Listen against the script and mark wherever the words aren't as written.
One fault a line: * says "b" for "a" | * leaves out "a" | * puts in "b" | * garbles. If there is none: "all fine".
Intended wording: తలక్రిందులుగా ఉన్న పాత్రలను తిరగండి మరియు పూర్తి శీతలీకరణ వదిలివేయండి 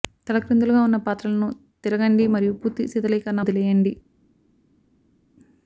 all fine